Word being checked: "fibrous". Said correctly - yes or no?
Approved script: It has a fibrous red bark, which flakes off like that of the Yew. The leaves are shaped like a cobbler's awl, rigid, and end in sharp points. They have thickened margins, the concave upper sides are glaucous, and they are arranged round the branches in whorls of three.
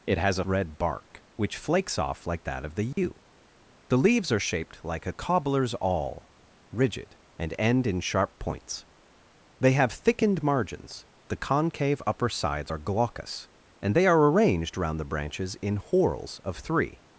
no